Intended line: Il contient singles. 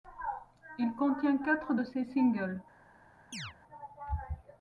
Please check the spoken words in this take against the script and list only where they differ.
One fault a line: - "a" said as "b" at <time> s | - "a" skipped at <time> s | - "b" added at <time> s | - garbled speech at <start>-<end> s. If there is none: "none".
- "quatre de ses" added at 1.4 s